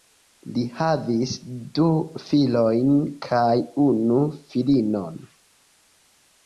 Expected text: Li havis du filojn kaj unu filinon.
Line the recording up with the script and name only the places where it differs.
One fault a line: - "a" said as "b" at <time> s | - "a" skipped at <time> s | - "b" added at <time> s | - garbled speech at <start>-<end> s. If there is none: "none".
none